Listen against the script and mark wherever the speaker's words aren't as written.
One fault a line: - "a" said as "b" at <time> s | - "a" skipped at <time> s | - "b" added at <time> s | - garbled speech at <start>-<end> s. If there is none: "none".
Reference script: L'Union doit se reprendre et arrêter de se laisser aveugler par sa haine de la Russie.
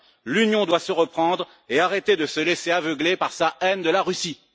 none